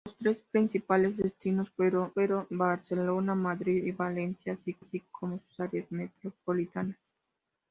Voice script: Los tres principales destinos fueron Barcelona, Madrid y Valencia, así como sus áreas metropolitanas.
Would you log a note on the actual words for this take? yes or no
yes